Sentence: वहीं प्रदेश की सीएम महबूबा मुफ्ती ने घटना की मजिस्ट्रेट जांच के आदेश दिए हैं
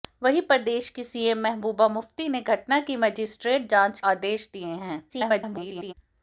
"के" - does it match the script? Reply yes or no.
no